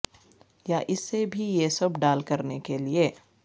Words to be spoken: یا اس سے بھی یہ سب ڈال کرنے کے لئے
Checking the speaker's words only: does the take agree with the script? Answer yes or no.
yes